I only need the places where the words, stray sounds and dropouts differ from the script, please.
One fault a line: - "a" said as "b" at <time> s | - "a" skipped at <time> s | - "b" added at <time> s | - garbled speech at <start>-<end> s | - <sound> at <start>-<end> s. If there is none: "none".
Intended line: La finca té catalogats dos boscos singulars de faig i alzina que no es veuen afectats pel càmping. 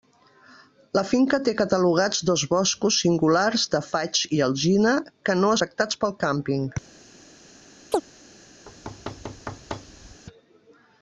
- "es veuen" skipped at 5.5 s
- chirp at 7.9-8.0 s
- thud at 8.7-10.2 s